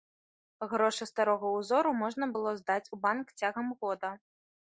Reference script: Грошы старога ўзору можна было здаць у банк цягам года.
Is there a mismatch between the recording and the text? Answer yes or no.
no